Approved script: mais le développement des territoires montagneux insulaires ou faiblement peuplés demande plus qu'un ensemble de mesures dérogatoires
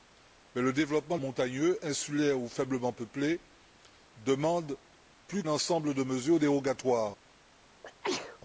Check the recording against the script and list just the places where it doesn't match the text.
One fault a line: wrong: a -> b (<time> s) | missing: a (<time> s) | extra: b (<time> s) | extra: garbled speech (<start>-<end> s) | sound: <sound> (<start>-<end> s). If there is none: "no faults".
missing: des territoires (1.2 s)
missing: qu'un (5.4 s)
sound: sneeze (7.8-8.4 s)